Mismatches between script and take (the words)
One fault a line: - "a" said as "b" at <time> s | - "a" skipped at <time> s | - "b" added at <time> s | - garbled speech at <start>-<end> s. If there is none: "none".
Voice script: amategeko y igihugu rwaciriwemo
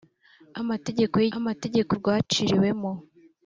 - "igihugu" said as "amategeko" at 1.4 s